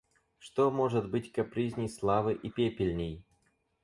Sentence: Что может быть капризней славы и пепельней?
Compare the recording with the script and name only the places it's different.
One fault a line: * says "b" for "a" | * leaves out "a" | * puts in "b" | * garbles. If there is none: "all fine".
all fine